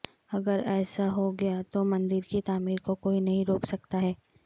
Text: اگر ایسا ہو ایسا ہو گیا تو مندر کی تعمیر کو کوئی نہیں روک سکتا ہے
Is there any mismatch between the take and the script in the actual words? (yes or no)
yes